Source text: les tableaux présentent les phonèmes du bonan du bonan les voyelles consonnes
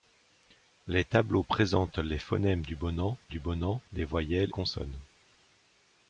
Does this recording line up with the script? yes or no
yes